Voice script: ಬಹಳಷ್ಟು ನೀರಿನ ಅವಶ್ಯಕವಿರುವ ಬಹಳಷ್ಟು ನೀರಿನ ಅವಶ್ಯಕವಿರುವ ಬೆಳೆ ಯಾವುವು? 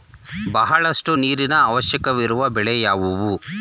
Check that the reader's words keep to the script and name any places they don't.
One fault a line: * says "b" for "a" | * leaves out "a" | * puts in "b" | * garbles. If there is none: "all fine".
* leaves out "ಬಹಳಷ್ಟು ನೀರಿನ ಅವಶ್ಯಕವಿರುವ"